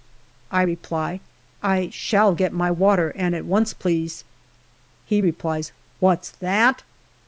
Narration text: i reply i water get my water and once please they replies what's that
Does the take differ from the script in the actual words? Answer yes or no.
yes